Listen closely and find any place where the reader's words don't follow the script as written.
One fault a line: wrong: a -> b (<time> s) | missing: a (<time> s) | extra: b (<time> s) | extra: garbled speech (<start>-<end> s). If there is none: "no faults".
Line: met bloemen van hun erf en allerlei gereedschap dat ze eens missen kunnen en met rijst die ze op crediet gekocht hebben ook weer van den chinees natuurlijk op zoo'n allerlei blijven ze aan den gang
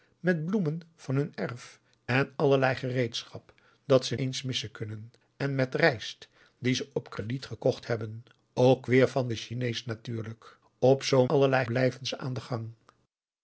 no faults